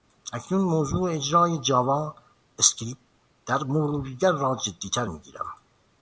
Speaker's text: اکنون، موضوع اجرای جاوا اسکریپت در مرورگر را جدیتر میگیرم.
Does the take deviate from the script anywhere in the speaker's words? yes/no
no